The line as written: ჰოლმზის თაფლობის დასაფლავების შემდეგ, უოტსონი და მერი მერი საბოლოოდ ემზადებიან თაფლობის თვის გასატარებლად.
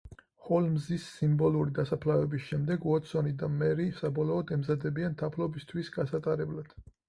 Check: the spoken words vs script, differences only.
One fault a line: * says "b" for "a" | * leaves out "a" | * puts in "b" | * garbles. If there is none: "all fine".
* says "სიმბოლური" for "თაფლობის"
* leaves out "მერი"